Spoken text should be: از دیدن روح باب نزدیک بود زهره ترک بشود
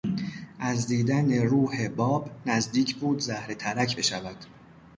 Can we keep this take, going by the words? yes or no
yes